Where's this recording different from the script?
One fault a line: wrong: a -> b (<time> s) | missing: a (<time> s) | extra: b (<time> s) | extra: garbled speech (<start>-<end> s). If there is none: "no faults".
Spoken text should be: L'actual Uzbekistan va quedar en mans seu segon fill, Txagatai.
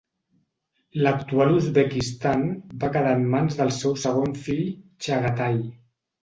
extra: del (3.6 s)